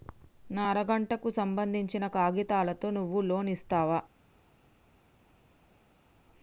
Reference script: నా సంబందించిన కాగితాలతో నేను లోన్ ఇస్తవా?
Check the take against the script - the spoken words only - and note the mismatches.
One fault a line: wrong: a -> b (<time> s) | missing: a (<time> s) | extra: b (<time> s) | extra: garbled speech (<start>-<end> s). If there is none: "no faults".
extra: అర గంటకు (0.7 s)
wrong: నేను -> నువ్వు (2.9 s)